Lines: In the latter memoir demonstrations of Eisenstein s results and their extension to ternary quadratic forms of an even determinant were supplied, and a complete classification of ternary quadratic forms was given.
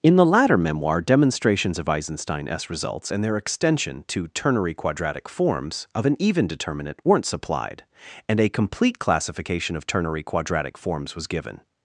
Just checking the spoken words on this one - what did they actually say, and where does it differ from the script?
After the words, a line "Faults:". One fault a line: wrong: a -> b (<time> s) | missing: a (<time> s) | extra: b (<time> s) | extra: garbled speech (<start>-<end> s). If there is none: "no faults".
In the latter memoir demonstrations of Eisenstein s results and their extension to ternary quadratic forms of an even determinant weren't supplied, and a complete classification of ternary quadratic forms was given.
Faults:
wrong: were -> weren't (7.1 s)